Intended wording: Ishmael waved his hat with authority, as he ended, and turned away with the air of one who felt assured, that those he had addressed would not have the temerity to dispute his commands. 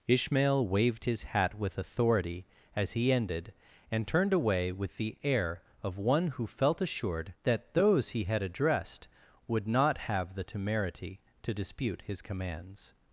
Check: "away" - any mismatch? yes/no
no